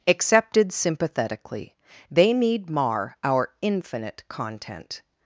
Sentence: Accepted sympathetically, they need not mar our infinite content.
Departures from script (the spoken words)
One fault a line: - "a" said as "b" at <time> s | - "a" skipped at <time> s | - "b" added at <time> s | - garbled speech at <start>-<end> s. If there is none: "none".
- "not" skipped at 2.7 s